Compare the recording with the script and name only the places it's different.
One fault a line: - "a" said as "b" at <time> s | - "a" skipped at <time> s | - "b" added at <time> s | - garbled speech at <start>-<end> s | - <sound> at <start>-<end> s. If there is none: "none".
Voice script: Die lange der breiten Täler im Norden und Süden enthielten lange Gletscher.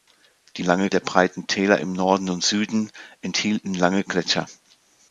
none